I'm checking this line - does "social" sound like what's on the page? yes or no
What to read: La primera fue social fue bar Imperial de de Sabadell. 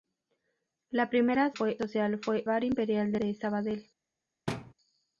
yes